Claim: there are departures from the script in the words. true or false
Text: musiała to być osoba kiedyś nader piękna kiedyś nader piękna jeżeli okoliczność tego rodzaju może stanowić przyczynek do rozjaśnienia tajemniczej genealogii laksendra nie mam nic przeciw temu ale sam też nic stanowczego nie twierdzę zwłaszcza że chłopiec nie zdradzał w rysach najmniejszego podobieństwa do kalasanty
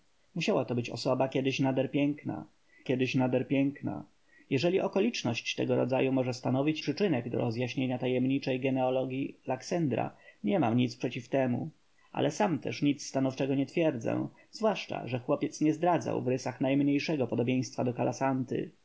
false